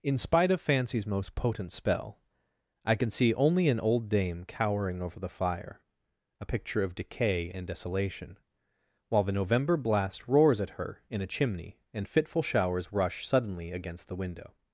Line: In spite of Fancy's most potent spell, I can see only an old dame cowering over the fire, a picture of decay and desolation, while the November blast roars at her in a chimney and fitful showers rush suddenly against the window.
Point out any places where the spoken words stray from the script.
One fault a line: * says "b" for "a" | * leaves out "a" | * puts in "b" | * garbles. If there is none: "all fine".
all fine